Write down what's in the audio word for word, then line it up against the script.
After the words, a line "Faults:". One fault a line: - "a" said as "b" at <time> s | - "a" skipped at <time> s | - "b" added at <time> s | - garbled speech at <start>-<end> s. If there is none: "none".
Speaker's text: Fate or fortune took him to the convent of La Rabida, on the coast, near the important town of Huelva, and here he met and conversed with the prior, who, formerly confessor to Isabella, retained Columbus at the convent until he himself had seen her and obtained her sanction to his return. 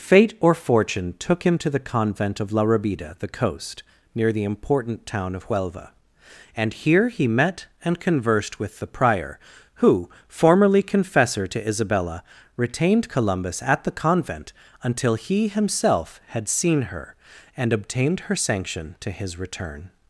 Fate or fortune took him to the convent of La Rabida, the coast, near the important town of Huelva, and here he met and conversed with the prior, who, formerly confessor to Isabella, retained Columbus at the convent until he himself had seen her and obtained her sanction to his return.
Faults:
- "on" skipped at 3.1 s